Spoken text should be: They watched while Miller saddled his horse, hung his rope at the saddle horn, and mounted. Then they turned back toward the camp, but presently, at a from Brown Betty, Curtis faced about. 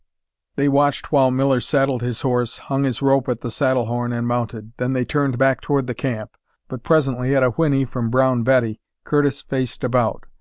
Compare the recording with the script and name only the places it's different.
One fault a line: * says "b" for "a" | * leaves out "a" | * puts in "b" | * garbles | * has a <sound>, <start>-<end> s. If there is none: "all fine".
* puts in "whinny"